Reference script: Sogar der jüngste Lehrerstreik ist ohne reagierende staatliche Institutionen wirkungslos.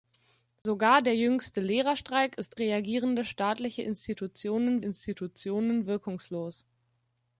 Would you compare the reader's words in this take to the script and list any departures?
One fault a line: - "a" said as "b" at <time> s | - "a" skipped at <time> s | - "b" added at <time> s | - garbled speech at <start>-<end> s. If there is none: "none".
- "ohne" skipped at 2.6 s
- "Institutionen" added at 4.8 s